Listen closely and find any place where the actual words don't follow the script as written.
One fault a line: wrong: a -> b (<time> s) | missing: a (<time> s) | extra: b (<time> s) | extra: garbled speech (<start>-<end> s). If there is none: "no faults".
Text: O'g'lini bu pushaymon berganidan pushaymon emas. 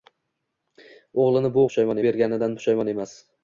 no faults